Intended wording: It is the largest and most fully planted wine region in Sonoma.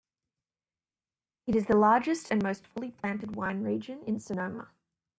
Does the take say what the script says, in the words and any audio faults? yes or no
yes